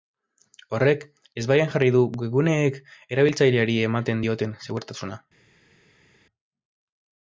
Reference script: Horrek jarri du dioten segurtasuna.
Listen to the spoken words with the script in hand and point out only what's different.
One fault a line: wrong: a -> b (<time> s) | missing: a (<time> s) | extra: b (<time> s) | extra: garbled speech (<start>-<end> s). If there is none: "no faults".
extra: ezbaian (1.4 s)
extra: webguneek erabiltzaileari ematen (2.2 s)